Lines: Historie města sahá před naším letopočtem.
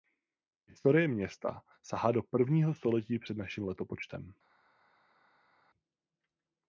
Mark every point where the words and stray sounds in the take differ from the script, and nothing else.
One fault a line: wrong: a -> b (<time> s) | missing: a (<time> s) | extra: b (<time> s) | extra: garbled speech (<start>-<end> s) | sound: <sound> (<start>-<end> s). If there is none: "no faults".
extra: do prvního století (2.1 s)